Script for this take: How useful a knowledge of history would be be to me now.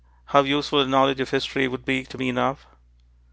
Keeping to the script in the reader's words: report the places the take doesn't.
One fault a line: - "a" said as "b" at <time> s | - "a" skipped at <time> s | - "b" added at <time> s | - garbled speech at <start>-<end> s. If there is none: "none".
- "be" skipped at 2.0 s